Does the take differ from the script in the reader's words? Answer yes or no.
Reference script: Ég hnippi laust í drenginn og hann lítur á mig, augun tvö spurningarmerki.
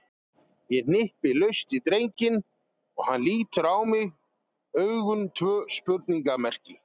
no